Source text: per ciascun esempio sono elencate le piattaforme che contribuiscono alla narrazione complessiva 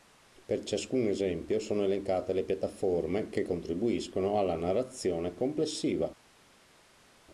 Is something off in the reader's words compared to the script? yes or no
no